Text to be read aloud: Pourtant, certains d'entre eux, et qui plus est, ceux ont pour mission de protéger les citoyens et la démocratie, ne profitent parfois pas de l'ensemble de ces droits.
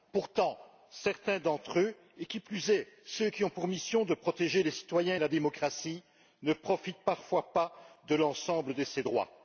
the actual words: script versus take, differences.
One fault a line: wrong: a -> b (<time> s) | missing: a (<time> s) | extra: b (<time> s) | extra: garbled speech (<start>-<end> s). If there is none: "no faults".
extra: qui (3.3 s)